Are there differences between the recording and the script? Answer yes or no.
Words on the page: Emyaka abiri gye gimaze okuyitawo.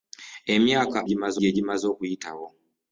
yes